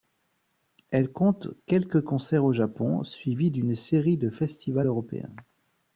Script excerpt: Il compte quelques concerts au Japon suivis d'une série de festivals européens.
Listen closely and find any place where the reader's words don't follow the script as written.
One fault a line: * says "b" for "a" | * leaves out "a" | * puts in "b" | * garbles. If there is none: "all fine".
* says "Elle" for "Il"